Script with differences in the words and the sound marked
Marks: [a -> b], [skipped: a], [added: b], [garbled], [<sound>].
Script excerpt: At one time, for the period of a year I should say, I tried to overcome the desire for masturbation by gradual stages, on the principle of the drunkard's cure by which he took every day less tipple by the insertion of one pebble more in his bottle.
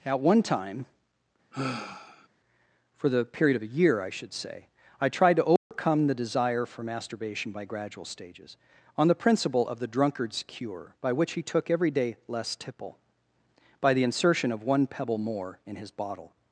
At one time, [sigh] for the period of a year I should say, I tried to overcome [dropout] the desire for masturbation by gradual stages, on the principle of the drunkard's cure by which he took every day less tipple by the insertion of one pebble more in his bottle.